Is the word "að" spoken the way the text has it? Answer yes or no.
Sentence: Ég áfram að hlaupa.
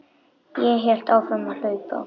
yes